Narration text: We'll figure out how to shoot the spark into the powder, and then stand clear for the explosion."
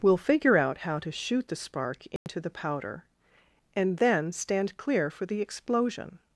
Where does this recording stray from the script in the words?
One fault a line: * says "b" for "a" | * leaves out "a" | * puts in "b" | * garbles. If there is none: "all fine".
all fine